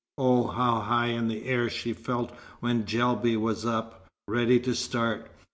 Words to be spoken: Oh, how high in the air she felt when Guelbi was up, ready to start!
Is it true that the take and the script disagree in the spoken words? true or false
false